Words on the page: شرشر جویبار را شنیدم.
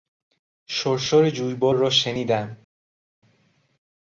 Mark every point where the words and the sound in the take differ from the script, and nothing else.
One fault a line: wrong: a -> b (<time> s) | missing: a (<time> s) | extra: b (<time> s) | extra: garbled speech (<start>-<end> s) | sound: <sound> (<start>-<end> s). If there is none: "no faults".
no faults